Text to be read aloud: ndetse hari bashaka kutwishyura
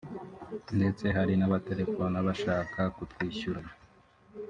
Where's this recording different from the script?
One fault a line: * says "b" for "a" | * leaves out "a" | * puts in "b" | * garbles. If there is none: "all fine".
* puts in "n'abatelefona"